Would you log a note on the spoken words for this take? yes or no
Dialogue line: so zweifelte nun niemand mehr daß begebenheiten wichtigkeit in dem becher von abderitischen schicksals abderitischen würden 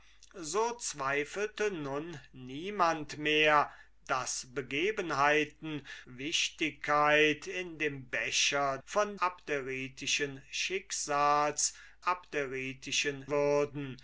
no